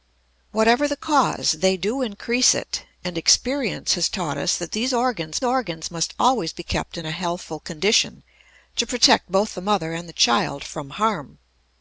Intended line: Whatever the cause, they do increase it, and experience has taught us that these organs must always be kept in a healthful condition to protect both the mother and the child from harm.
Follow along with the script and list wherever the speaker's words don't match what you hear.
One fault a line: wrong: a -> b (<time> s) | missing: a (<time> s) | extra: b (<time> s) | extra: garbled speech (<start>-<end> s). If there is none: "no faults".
extra: organs (5.4 s)